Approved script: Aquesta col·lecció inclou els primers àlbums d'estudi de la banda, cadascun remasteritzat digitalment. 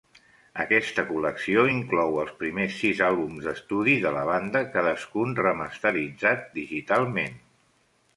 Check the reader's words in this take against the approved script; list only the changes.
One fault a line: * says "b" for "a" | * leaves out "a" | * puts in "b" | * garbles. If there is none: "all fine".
* puts in "sis"